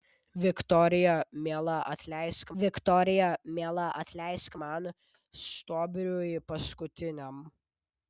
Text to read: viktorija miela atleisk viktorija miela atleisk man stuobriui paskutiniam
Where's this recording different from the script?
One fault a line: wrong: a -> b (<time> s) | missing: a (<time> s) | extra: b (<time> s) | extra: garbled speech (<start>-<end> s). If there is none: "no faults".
no faults